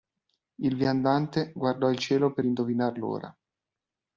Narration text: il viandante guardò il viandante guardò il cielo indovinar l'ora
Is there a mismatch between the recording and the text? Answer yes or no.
yes